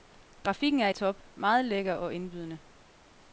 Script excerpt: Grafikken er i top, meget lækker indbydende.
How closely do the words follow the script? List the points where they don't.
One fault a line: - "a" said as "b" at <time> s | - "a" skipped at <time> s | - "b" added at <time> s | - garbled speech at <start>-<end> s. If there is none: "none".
- "og" added at 1.9 s